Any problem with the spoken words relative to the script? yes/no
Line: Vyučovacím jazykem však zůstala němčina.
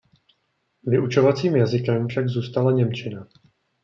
no